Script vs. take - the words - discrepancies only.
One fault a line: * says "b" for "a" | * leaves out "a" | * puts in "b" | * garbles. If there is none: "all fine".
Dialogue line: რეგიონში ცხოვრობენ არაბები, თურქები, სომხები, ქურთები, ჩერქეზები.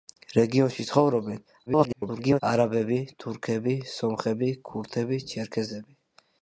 * garbles